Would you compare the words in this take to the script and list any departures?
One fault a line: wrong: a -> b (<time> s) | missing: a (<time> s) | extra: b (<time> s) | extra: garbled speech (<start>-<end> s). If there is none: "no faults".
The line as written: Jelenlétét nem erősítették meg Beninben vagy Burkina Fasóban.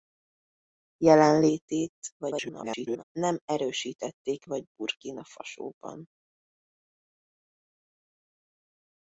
extra: garbled speech (2.2-3.0 s)
missing: meg Beninben (4.5 s)